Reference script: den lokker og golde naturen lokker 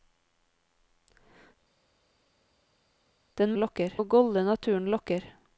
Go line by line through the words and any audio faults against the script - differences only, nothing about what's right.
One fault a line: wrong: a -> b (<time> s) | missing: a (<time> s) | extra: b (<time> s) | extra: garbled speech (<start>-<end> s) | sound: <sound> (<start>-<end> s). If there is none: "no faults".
no faults